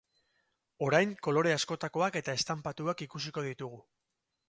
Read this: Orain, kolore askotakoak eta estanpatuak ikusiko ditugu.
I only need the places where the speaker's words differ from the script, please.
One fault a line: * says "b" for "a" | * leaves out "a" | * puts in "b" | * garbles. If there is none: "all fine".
all fine